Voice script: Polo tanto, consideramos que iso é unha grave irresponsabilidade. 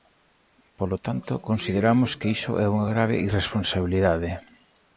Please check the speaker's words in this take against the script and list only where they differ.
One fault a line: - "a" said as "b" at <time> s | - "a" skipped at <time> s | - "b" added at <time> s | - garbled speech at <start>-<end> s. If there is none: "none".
none